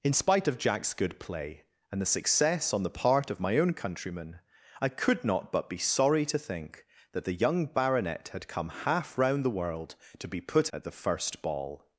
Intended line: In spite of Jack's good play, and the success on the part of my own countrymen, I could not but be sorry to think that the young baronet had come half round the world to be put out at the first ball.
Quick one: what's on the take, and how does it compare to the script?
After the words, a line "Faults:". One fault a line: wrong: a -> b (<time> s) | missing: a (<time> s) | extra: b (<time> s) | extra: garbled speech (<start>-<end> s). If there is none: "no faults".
In spite of Jack's good play, and the success on the part of my own countrymen, I could not but be sorry to think that the young baronet had come half round the world to be put at the first ball.
Faults:
missing: out (10.7 s)